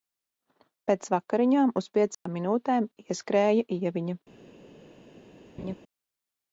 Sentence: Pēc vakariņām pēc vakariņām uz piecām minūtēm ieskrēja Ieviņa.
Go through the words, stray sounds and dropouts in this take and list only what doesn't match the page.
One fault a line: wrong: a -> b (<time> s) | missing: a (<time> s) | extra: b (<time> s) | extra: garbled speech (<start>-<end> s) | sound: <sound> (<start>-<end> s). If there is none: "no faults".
missing: pēc vakariņām (1.8 s)
sound: dropout (2.1-2.3 s)
sound: laugh (5.6-5.8 s)